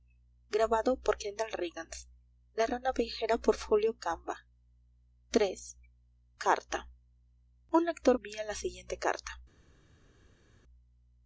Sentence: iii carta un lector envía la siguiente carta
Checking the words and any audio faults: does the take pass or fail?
pass